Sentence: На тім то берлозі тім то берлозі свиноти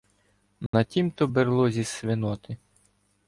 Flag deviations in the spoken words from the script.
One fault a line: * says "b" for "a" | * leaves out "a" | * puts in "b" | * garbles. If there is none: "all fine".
* leaves out "тім то берлозі"